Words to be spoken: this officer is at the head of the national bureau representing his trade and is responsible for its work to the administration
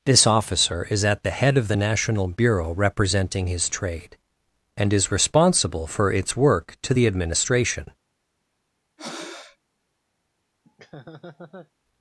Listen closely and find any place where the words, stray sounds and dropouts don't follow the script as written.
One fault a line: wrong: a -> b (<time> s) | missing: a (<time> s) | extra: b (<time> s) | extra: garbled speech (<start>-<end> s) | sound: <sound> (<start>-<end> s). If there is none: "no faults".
sound: breath (9.0-9.6 s)
sound: laugh (10.6-11.7 s)